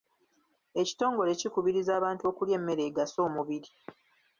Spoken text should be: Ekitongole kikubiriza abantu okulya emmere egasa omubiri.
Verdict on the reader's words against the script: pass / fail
pass